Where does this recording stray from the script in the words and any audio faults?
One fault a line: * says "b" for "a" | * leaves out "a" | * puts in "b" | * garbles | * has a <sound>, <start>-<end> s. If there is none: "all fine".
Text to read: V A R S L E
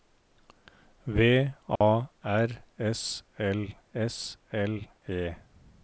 * has a dropout, 1.8-1.8 s
* puts in "S L"